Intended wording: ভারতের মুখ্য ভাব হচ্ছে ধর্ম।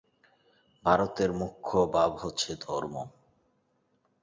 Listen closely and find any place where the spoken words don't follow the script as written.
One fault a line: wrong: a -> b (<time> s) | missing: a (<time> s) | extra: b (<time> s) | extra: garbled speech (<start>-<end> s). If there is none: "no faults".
no faults